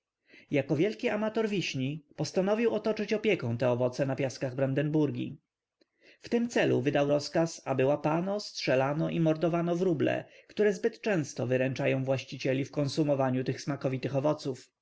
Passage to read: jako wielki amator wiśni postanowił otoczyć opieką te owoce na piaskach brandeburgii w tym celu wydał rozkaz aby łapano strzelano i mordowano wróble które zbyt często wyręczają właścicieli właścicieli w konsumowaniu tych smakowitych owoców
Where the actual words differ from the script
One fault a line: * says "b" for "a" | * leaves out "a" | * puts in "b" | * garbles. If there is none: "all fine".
* leaves out "właścicieli"